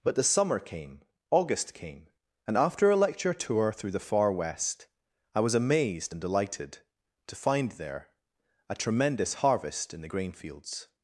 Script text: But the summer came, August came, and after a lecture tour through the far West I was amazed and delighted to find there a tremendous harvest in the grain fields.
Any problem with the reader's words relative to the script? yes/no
no